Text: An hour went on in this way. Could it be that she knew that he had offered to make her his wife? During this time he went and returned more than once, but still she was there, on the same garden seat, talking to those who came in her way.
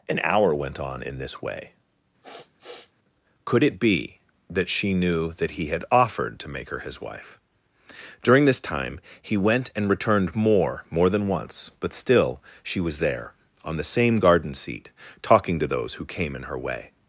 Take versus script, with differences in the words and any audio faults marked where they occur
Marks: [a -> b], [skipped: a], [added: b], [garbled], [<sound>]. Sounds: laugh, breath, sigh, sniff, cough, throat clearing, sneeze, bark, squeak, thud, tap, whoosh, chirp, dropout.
An hour went on in this way. [sniff] Could it be that she knew that he had offered to make her his wife? During this time he went and returned more [added: more] than once, but still she was there, on the same garden seat, talking to those who came in her way.